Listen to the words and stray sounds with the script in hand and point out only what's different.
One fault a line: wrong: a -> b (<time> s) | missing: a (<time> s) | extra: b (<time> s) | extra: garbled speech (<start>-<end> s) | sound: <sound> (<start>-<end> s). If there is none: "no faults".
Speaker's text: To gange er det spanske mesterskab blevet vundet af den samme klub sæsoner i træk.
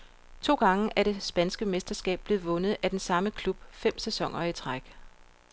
extra: fem (3.7 s)